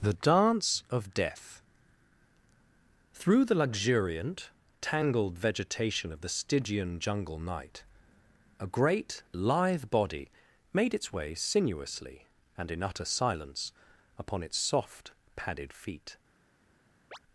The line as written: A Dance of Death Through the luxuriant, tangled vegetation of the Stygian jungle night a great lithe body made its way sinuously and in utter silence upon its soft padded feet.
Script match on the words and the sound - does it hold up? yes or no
no